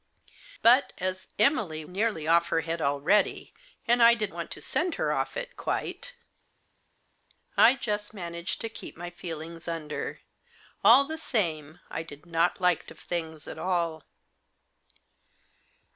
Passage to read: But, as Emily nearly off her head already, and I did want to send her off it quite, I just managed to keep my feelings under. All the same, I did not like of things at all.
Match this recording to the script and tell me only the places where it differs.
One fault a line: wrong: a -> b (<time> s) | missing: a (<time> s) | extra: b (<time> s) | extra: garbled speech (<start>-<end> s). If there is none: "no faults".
no faults